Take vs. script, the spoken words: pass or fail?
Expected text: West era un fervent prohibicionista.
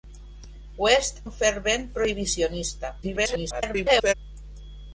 fail